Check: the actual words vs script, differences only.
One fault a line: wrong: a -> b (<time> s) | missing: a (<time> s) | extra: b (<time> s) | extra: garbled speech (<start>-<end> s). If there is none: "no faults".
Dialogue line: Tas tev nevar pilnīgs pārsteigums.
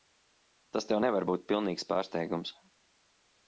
extra: būt (1.3 s)